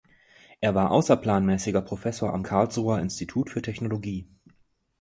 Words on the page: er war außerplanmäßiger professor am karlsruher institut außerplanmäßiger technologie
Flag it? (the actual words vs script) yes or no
yes